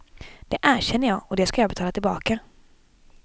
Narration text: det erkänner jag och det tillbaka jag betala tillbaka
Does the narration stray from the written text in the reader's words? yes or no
yes